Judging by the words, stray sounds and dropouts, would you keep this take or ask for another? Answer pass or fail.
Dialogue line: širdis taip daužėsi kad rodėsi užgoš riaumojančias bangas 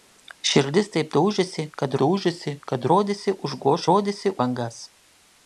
fail